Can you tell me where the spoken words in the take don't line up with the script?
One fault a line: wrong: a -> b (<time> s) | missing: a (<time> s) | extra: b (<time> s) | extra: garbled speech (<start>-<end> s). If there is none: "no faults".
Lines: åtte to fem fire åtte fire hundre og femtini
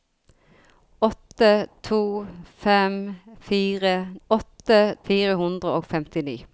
no faults